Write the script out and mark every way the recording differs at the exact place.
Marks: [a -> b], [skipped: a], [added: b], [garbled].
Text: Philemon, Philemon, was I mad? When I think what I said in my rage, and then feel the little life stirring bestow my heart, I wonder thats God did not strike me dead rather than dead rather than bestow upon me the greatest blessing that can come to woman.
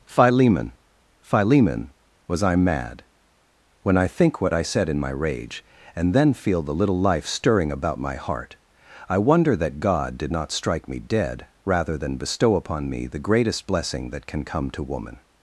Philemon, Philemon, was I mad? When I think what I said in my rage, and then feel the little life stirring [bestow -> about] my heart, I wonder [thats -> that] God did not strike me dead rather than [skipped: dead rather than] bestow upon me the greatest blessing that can come to woman.